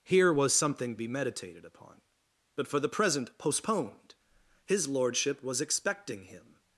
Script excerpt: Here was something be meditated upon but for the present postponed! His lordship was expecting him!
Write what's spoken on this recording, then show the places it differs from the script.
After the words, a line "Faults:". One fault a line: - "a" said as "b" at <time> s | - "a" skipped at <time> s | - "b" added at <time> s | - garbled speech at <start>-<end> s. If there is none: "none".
Here was something be meditated upon but for the present postponed! His lordship was expecting him!
Faults:
none